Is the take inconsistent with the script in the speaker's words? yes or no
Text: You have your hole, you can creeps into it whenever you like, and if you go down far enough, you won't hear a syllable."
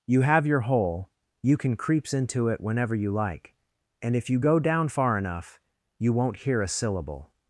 no